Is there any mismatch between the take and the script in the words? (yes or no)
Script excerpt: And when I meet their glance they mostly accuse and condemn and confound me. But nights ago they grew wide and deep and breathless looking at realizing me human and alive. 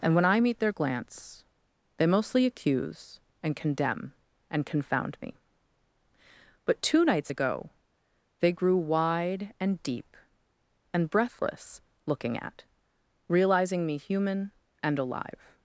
yes